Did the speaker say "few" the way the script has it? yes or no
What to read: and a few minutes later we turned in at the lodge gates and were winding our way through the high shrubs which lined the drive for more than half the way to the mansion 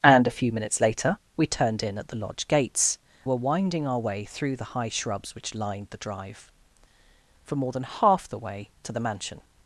yes